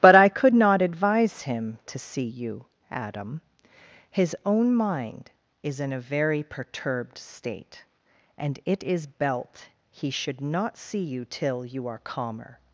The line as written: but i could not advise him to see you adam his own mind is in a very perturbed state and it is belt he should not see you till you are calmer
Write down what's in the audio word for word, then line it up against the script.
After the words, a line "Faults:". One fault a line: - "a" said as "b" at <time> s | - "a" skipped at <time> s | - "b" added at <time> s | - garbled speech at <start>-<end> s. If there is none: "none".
but i could not advise him to see you adam his own mind is in a very perturbed state and it is belt he should not see you till you are calmer
Faults:
none